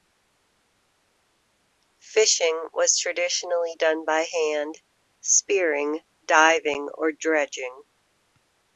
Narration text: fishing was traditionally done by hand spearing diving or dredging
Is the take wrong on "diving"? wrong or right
right